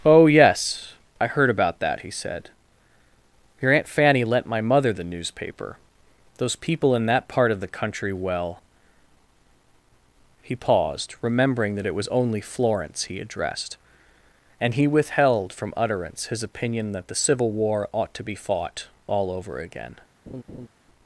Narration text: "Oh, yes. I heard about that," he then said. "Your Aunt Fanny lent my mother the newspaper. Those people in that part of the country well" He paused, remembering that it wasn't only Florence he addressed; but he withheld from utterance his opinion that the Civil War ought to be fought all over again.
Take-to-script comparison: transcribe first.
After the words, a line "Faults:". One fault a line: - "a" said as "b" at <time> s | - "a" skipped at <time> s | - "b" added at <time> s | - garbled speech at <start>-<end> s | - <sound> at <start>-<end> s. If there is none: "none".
"Oh, yes. I heard about that," he said. "Your Aunt Fanny lent my mother the newspaper. Those people in that part of the country well" He paused, remembering that it was only Florence he addressed; and he withheld from utterance his opinion that the Civil War ought to be fought all over again.
Faults:
- "then" skipped at 2.1 s
- "wasn't" said as "was" at 11.9 s
- "but" said as "and" at 14.6 s
- laugh at 20.3-20.7 s